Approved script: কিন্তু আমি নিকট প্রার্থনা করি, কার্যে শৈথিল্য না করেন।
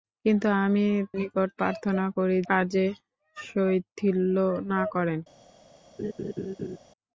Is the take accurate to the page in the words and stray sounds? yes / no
no